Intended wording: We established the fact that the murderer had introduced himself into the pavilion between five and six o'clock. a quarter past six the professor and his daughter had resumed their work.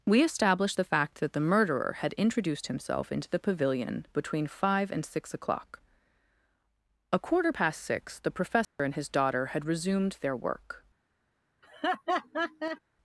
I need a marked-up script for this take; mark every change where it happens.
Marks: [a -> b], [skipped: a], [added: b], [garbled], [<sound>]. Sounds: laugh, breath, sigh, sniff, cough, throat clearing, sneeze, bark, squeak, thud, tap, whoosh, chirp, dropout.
We established the fact that the murderer had introduced himself into the pavilion between five and six o'clock. a quarter past six the professor [dropout] and his daughter had resumed their work. [laugh]